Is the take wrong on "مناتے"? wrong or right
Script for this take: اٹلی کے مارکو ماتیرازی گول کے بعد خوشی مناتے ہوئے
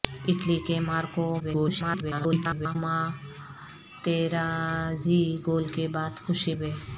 wrong